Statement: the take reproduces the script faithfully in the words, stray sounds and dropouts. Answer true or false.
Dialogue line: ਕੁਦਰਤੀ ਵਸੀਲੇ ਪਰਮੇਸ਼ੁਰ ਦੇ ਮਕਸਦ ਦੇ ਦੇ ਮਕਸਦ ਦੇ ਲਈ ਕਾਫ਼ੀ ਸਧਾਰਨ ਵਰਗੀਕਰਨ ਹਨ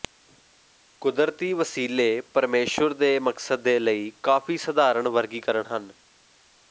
false